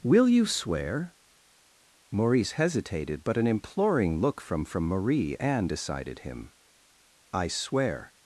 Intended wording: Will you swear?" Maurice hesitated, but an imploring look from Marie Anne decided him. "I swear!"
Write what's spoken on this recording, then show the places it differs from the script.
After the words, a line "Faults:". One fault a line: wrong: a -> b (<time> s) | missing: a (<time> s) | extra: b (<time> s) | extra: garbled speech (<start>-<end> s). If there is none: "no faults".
Will you swear?" Maurice hesitated, but an imploring look from from Marie Anne decided him. "I swear!"
Faults:
extra: from (4.7 s)